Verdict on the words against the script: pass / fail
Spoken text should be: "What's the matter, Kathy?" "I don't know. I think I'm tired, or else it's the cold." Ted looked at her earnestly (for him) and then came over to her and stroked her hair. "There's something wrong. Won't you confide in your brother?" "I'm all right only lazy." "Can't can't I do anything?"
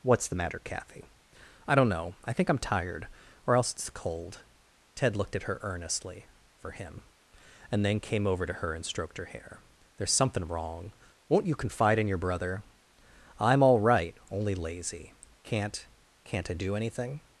fail